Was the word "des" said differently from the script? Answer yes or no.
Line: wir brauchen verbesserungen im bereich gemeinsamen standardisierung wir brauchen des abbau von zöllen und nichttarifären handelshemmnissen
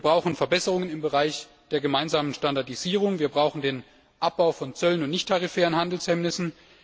yes